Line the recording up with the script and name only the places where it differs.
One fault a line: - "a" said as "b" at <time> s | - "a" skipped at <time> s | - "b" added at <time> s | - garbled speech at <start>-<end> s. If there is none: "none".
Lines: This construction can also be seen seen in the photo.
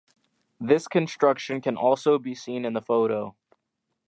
- "seen" skipped at 2.6 s